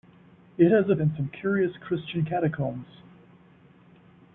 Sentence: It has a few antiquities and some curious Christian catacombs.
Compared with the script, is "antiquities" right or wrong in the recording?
wrong